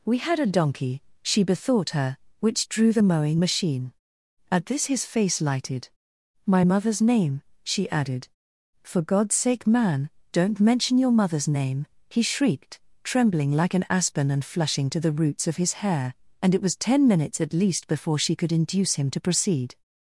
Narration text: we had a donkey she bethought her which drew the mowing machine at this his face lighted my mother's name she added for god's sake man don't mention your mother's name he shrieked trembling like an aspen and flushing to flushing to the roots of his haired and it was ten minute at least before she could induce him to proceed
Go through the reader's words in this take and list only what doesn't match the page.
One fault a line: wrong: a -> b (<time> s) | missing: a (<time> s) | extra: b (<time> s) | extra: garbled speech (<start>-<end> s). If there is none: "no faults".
missing: flushing to (15.0 s)
wrong: haired -> hair (15.7 s)
wrong: minute -> minutes (17.1 s)